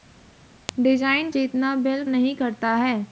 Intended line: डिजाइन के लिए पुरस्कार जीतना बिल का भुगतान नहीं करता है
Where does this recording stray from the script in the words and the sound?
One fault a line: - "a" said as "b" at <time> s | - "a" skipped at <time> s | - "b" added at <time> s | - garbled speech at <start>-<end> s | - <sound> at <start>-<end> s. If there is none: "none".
- "के लिए पुरस्कार" skipped at 1.3 s
- "का भुगतान" skipped at 2.0 s